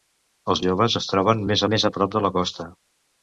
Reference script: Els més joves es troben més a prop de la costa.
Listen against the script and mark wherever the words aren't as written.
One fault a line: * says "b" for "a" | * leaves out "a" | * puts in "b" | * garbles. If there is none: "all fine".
* leaves out "més"
* puts in "més"